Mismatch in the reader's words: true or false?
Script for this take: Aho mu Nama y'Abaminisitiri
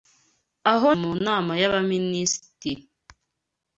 false